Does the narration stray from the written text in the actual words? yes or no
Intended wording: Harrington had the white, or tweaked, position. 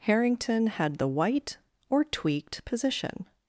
no